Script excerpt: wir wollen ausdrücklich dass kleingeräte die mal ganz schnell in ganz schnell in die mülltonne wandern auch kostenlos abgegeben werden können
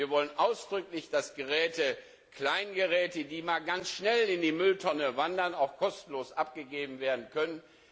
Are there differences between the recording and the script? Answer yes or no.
yes